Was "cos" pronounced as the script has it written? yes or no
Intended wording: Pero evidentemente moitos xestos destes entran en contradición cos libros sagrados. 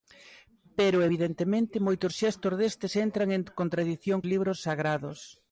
no